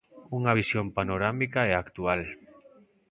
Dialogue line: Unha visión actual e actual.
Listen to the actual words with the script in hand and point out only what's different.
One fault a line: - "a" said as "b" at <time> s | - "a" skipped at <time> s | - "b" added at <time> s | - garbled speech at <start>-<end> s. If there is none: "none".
- "actual" said as "panorámica" at 1.0 s